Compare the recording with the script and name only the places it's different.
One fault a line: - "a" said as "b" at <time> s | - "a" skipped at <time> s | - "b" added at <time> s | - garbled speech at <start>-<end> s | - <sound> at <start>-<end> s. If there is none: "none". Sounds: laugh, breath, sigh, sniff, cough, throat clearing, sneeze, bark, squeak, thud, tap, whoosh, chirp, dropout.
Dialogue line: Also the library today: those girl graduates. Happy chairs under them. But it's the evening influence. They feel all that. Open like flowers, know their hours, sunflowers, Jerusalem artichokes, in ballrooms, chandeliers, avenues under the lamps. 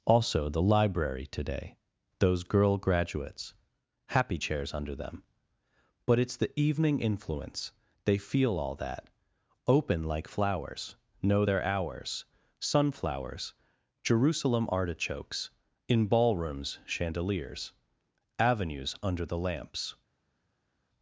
none